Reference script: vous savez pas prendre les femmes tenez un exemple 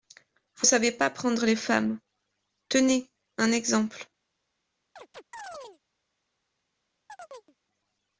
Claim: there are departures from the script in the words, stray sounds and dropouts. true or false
true